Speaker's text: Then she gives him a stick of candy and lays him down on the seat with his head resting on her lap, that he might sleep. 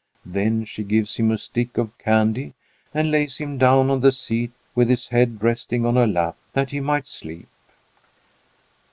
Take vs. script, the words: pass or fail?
pass